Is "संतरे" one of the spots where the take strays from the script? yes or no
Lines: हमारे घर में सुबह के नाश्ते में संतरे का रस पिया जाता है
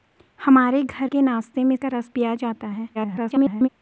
yes